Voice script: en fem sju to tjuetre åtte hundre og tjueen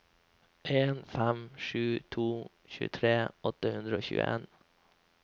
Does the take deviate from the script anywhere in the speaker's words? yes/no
no